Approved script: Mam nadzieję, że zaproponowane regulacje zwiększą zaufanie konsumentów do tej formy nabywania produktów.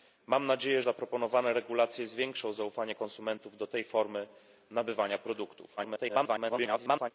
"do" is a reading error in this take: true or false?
false